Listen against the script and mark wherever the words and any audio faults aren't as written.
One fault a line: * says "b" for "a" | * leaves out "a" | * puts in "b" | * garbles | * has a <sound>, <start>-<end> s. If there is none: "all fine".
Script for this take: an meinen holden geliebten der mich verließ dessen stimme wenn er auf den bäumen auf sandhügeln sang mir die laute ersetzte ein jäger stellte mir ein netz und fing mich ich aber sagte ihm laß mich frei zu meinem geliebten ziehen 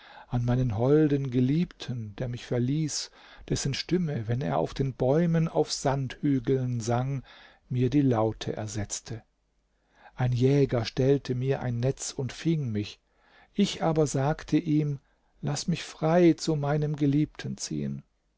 all fine